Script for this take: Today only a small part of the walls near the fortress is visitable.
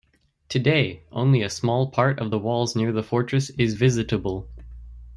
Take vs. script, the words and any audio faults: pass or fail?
pass